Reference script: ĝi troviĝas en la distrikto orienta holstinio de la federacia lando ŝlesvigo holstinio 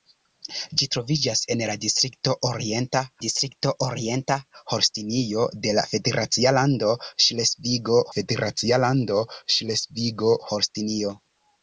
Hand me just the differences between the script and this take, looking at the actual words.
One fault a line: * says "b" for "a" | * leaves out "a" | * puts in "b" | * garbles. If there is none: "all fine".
* puts in "distrikto orienta"
* puts in "federacia lando ŝlesvigo"